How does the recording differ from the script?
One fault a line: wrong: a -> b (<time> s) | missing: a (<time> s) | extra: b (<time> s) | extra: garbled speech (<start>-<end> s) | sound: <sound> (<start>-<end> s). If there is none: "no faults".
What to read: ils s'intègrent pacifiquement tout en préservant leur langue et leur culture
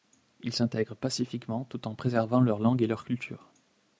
no faults